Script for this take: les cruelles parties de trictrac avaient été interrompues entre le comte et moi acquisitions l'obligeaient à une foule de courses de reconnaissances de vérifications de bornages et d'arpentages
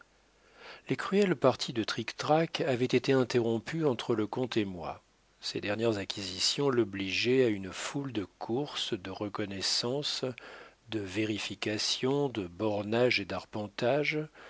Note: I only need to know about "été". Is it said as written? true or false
true